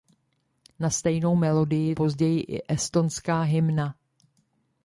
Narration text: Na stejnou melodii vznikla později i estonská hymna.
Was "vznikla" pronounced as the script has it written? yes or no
no